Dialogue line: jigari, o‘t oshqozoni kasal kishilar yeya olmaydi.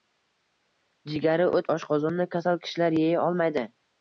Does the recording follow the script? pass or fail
pass